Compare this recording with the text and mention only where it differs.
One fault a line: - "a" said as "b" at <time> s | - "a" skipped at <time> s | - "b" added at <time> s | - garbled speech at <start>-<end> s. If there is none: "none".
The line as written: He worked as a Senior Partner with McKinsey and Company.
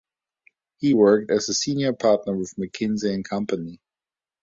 none